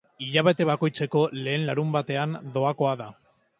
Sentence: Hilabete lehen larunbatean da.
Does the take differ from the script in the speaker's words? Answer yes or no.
yes